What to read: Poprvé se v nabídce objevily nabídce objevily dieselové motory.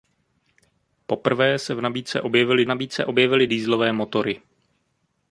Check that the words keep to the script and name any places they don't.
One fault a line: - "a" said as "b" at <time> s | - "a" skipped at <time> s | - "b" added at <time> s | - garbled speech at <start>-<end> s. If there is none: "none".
none